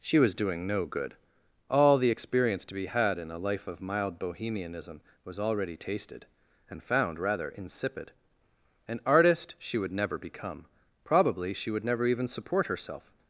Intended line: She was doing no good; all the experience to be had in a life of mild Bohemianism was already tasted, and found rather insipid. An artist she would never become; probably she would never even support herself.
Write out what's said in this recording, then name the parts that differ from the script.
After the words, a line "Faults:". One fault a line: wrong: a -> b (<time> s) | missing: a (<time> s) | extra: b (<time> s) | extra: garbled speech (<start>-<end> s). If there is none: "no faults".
She was doing no good; all the experience to be had in a life of mild Bohemianism was already tasted, and found rather insipid. An artist she would never become; probably she would never even support herself.
Faults:
no faults